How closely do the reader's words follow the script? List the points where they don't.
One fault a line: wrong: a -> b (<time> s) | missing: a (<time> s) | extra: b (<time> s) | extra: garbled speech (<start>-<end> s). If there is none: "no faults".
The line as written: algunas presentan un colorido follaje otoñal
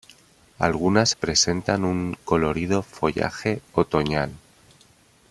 no faults